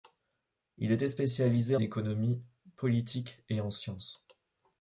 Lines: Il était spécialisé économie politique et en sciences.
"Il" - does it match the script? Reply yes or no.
yes